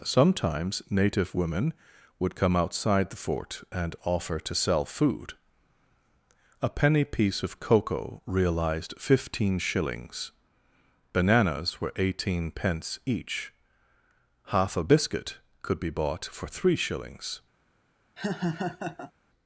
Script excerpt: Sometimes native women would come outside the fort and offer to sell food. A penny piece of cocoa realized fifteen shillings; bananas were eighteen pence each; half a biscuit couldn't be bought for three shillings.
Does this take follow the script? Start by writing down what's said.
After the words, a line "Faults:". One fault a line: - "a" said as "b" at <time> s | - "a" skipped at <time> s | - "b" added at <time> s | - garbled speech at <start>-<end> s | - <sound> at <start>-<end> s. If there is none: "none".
Sometimes native women would come outside the fort and offer to sell food. A penny piece of cocoa realized fifteen shillings; bananas were eighteen pence each; half a biscuit could be bought for three shillings.
Faults:
- "couldn't" said as "could" at 15.6 s
- laugh at 18.2-19.1 s